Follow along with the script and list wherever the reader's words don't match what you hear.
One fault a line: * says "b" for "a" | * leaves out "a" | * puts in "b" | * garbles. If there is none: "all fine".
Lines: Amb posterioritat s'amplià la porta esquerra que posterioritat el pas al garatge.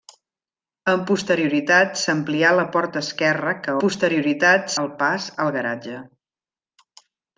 all fine